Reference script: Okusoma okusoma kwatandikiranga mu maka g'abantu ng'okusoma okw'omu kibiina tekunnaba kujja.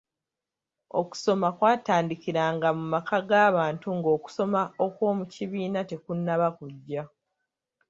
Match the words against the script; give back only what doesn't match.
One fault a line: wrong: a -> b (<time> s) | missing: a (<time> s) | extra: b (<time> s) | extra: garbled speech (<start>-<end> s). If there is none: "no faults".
missing: okusoma (1.5 s)